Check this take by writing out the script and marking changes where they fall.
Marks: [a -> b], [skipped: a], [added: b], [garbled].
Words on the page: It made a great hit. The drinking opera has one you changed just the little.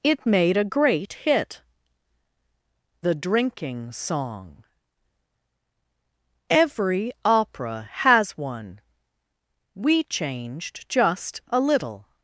It made a great hit. The drinking [added: song every] opera has one [you -> we] changed just [the -> a] little.